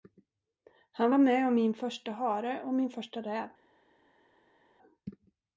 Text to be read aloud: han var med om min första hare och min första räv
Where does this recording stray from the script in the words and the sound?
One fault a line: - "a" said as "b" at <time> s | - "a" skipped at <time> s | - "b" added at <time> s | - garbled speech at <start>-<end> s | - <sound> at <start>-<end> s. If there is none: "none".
none